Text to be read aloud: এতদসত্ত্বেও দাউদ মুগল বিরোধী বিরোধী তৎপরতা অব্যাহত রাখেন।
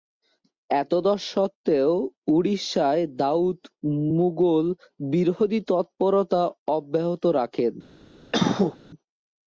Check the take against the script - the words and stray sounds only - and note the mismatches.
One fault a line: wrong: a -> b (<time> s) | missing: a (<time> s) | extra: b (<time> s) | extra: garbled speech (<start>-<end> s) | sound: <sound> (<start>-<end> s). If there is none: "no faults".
extra: উড়িষ্যায় (2.4 s)
missing: বিরোধী (5.6 s)
sound: cough (8.3-8.8 s)